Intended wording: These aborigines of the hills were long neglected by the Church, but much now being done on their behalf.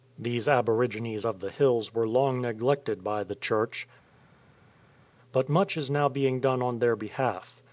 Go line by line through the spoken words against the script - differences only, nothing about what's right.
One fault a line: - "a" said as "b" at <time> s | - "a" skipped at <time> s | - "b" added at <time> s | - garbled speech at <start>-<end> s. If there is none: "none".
- "is" added at 5.8 s